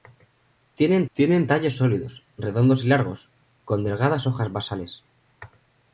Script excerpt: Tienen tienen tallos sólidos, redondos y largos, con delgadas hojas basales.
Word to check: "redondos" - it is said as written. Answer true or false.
true